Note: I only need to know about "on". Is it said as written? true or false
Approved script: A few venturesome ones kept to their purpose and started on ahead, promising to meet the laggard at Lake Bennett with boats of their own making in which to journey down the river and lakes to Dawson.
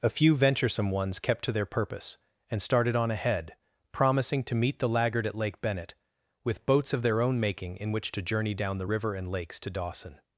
true